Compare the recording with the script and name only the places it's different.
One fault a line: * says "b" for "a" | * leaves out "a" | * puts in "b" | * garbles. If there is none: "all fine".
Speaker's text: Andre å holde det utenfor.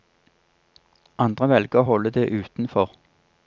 * puts in "velger"